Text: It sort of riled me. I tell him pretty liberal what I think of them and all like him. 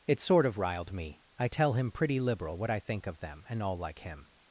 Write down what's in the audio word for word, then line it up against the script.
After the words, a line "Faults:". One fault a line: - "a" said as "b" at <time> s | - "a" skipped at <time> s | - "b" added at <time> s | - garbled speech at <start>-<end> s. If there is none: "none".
It sort of riled me. I tell him pretty liberal what I think of them and all like him.
Faults:
none